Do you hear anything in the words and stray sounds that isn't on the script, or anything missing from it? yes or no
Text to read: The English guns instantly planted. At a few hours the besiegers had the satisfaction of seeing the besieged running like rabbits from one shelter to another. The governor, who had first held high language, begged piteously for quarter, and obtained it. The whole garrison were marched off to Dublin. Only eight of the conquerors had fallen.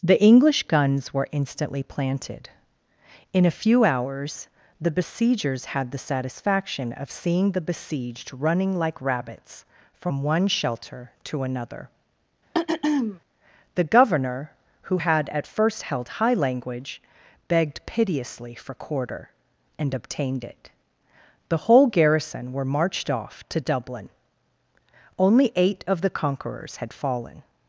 yes